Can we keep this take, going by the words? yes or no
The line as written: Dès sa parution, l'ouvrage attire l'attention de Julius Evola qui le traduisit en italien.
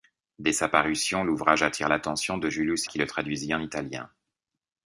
no